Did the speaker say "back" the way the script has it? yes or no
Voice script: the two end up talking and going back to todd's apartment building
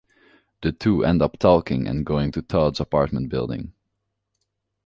no